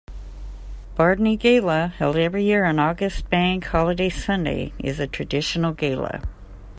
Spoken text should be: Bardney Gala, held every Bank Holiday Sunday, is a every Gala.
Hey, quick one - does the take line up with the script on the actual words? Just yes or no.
no